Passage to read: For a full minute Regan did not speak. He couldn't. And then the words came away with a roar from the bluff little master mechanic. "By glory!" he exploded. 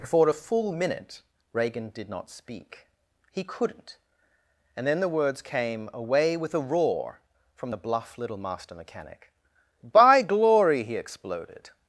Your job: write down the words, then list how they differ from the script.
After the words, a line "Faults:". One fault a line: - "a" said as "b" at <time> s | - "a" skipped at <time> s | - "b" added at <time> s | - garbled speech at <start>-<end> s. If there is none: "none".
For a full minute Regan did not speak. He couldn't. And then the words came away with a roar from the bluff little master mechanic. "By glory!" he exploded.
Faults:
none